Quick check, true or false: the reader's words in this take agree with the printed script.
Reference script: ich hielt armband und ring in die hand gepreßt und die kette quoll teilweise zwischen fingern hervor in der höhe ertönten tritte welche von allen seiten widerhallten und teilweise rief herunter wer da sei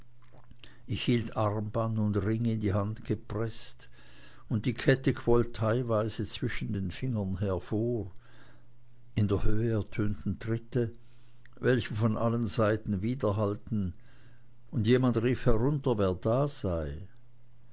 false